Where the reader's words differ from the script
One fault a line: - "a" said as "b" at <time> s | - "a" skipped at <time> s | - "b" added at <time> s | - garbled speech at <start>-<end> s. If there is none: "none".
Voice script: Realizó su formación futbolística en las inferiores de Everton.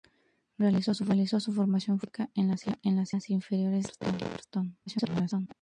- "las" added at 3.1 s
- garbled speech at 4.9-5.5 s